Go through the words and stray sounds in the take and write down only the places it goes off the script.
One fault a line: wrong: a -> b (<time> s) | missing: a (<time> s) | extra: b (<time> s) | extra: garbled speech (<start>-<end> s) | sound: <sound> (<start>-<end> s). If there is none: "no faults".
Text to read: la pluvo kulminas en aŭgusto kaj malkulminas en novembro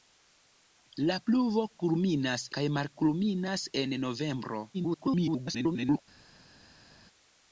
missing: en aŭgusto (2.5 s)
extra: garbled speech (4.7-6.0 s)